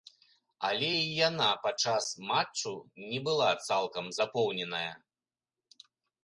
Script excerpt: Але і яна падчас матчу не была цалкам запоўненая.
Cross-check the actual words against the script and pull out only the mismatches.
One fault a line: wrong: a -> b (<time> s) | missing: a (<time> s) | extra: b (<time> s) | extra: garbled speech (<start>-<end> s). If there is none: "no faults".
no faults